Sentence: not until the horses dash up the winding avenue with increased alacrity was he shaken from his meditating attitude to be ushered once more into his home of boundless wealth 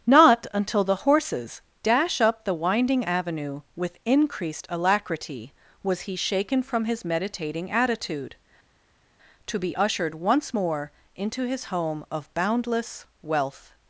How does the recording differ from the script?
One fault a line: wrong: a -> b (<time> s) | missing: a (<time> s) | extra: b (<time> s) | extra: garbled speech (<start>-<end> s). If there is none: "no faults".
no faults